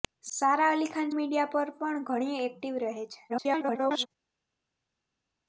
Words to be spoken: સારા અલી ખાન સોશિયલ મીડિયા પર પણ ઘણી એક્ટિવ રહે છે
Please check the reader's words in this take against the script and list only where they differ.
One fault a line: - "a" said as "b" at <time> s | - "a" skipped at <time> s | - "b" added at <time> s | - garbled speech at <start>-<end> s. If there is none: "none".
- "સોશિયલ" skipped at 1.1 s
- garbled speech at 3.3-4.1 s